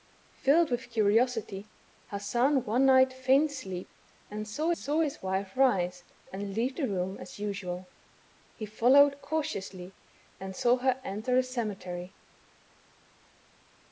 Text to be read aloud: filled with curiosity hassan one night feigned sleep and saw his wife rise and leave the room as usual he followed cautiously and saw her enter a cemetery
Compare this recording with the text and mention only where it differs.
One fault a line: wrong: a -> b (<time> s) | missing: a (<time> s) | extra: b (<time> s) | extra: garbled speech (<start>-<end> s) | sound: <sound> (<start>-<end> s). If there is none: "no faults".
extra: saw (4.8 s)